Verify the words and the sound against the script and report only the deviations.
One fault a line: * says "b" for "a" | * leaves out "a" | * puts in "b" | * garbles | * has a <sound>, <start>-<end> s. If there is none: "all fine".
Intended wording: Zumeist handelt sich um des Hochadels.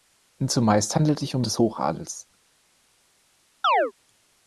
* has a chirp, 3.6-3.9 s